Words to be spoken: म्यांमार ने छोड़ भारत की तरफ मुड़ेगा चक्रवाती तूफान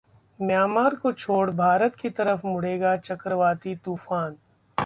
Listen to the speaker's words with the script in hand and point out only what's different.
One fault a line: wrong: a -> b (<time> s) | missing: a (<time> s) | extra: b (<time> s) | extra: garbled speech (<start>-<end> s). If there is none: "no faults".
wrong: ने -> को (0.9 s)